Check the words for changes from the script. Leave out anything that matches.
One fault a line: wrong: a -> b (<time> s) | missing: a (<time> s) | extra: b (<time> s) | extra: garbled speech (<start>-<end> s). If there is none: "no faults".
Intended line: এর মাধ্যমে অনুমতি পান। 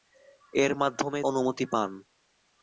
no faults